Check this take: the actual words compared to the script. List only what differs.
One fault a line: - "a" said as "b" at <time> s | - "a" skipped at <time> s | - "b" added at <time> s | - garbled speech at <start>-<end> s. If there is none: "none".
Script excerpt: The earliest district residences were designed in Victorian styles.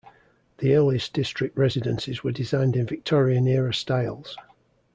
- "era" added at 3.5 s